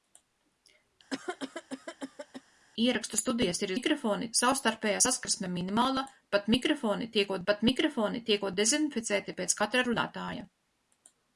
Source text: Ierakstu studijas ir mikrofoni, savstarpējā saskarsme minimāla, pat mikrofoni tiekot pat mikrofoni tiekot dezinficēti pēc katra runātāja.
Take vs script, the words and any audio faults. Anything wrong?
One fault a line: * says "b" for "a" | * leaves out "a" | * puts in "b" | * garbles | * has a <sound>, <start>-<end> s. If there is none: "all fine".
* has a cough, 1.1-2.4 s